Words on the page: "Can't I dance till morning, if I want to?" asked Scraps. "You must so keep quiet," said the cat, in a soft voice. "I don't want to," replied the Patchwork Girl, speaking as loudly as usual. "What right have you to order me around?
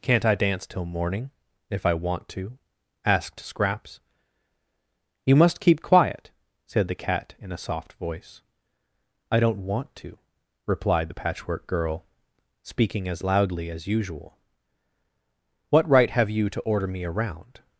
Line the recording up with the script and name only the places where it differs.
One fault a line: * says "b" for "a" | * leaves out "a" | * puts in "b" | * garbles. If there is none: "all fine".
* leaves out "so"